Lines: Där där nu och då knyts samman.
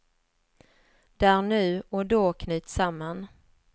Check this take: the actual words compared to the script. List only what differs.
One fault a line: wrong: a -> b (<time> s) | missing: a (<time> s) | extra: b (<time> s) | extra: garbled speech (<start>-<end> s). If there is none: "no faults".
missing: där (1.4 s)